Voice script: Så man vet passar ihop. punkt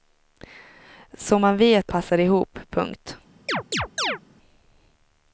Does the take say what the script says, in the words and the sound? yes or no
no